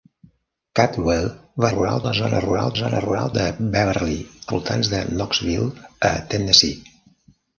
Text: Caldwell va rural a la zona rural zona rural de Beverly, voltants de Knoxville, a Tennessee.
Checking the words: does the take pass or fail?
pass